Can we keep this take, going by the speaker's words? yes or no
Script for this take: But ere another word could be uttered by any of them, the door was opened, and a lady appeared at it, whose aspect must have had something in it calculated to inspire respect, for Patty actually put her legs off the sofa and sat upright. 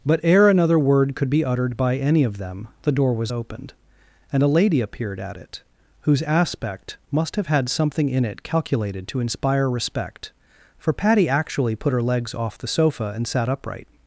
yes